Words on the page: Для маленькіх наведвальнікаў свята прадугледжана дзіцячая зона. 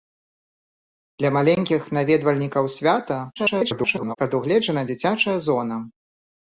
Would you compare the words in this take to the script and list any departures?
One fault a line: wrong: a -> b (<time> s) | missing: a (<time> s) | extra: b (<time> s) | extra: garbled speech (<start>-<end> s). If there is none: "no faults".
extra: garbled speech (3.4-4.2 s)